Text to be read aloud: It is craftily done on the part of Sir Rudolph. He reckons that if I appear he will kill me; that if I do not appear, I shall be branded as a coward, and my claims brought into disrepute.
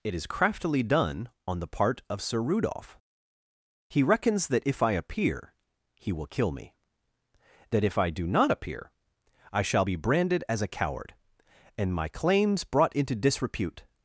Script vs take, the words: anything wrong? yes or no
no